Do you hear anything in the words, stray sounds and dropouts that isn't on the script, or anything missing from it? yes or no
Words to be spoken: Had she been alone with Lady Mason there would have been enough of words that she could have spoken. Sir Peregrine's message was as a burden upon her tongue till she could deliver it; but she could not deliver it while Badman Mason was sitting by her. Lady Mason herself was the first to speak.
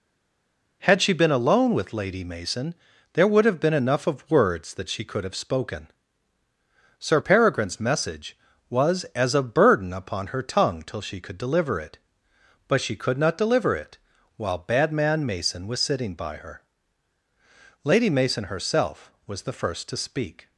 no